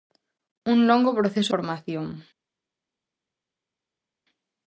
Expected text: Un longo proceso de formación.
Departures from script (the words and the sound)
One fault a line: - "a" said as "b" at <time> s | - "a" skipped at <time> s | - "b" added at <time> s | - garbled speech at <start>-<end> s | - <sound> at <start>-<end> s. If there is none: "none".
- "de" skipped at 1.5 s